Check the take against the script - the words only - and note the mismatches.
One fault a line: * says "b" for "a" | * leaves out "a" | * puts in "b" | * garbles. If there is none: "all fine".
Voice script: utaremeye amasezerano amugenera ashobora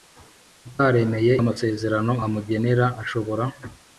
all fine